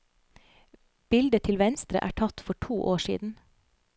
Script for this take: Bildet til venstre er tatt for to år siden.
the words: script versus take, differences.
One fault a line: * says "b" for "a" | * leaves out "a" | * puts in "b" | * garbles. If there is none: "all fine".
all fine